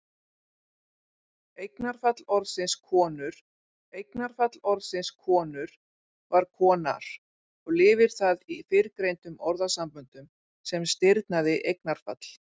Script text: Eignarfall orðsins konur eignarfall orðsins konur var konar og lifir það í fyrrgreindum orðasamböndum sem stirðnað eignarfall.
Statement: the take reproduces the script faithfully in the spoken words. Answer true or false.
true